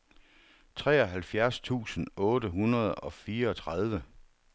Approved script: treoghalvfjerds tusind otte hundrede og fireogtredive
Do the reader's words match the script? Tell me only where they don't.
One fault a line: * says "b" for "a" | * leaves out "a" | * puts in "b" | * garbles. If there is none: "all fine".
all fine